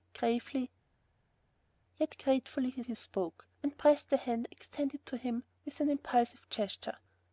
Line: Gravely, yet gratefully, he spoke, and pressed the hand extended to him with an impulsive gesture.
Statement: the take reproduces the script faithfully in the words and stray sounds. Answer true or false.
false